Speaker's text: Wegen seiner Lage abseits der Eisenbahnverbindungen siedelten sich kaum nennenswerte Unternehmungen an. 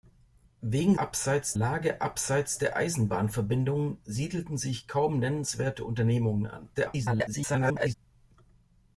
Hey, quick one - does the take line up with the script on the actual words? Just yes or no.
no